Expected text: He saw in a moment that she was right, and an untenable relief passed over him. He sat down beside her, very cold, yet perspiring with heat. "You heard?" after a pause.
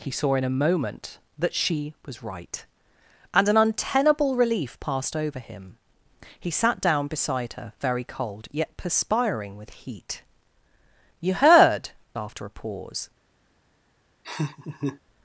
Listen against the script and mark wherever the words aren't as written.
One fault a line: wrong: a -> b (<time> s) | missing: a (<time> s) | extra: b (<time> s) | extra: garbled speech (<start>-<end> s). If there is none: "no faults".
no faults